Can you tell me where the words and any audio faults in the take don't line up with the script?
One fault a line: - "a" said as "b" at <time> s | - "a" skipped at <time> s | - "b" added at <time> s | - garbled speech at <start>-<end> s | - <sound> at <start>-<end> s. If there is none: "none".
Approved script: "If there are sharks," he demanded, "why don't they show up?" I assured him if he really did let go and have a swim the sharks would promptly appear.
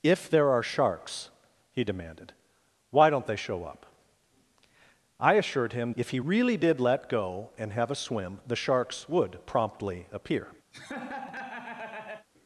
- laugh at 10.7-12.3 s